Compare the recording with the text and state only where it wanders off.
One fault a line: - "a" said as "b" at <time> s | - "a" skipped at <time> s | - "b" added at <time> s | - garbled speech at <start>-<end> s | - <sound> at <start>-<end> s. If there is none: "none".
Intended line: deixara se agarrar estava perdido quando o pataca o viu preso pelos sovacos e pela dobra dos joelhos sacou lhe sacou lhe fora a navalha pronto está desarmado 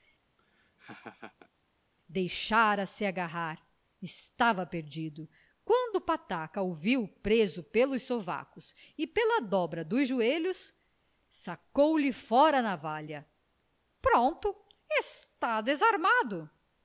- laugh at 0.4-1.5 s
- "sacou lhe" skipped at 12.1 s